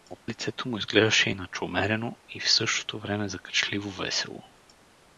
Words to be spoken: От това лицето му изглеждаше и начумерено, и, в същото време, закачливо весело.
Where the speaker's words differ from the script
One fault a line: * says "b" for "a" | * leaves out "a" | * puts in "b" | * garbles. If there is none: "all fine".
* leaves out "това"